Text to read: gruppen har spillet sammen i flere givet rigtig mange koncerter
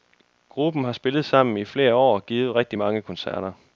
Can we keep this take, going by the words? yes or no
no